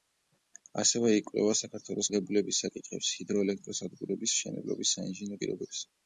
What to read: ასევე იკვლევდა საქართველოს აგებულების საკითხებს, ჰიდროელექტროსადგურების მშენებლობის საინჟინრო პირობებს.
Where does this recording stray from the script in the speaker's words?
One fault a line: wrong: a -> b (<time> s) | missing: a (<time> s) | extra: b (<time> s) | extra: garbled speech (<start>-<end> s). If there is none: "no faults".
no faults